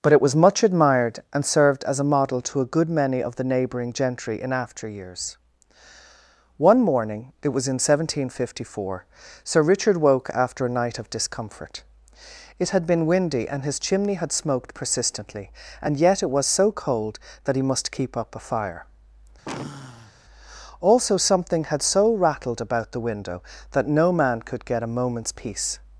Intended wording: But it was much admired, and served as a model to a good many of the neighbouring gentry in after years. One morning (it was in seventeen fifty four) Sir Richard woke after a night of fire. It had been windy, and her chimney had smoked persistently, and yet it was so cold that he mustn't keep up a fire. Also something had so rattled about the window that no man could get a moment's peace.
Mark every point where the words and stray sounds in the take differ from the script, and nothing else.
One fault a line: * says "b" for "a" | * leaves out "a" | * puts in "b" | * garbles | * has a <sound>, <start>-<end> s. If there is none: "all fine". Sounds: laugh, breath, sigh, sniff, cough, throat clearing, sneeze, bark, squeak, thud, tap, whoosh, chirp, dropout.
* says "discomfort" for "fire"
* says "his" for "her"
* says "must" for "mustn't"
* has a sigh, 19.4-20.1 s